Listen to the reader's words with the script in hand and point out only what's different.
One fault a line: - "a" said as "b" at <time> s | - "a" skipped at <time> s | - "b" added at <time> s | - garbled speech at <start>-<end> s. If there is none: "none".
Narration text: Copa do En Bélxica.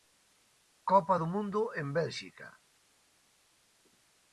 - "Mundo" added at 1.3 s